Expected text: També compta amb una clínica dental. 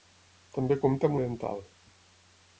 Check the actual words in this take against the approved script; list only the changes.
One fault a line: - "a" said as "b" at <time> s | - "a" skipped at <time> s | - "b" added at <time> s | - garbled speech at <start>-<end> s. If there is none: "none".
- "una clínica" skipped at 1.2 s